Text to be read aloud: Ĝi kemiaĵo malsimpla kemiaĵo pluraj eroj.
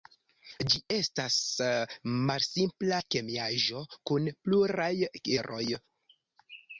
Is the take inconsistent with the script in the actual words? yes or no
yes